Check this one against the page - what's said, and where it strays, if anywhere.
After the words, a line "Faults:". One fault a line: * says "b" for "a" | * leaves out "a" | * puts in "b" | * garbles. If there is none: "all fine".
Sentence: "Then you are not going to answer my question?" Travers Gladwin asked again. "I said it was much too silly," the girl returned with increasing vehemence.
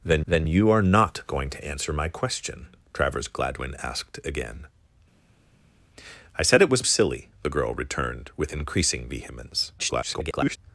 "Then then you are not going to answer my question?" Travers Gladwin asked again. "I said it was silly," the girl returned with increasing vehemence. [garbled]
Faults:
* puts in "then"
* leaves out "much too"
* garbles